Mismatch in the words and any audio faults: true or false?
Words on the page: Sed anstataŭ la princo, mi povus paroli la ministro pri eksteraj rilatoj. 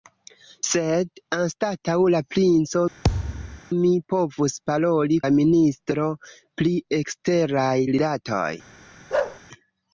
true